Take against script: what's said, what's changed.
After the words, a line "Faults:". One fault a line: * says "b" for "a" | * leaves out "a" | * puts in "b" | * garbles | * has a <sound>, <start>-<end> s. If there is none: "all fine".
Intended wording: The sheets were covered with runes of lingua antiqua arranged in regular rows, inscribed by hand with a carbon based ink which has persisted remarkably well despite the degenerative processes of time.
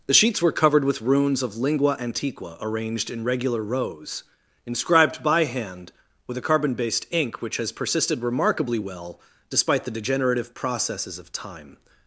The sheets were covered with runes of lingua antiqua arranged in regular rows, inscribed by hand with a carbon based ink which has persisted remarkably well despite the degenerative processes of time.
Faults:
all fine